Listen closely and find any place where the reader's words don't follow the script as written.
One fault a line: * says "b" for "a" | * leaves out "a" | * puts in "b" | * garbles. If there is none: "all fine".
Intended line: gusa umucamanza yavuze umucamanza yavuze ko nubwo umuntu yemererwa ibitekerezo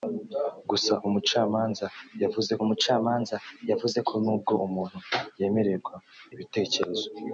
all fine